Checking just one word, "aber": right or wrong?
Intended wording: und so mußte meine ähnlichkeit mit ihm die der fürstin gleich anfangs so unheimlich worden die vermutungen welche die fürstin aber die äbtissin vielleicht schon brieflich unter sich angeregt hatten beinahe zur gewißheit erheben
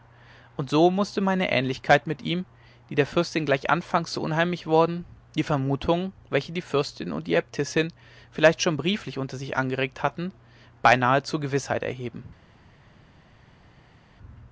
wrong